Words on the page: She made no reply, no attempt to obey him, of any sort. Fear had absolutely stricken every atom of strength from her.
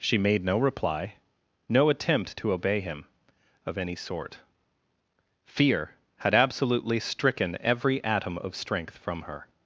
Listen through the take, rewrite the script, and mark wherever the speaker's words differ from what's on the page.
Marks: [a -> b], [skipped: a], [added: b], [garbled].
She made no reply, no attempt to obey him, of any sort. Fear had absolutely stricken every atom of strength from her.